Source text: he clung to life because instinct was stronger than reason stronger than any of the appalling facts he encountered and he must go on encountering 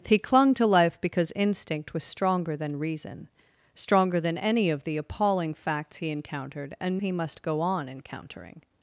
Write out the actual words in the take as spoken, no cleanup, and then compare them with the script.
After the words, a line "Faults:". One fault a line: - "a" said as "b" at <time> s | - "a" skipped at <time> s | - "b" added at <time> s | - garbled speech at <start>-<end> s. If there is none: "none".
he clung to life because instinct was stronger than reason stronger than any of the appalling facts he encountered and he must go on encountering
Faults:
none